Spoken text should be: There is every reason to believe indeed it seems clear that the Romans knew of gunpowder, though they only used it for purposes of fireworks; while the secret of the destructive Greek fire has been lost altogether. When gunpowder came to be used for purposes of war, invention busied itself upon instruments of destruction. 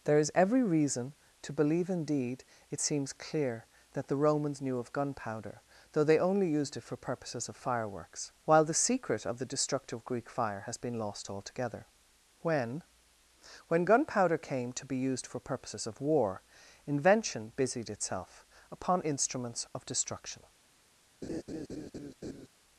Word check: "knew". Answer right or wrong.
right